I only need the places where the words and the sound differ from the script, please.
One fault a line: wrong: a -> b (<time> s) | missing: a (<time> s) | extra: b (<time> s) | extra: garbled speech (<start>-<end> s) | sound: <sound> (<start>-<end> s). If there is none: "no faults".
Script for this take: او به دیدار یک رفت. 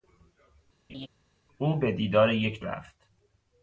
sound: laugh (0.9-1.1 s)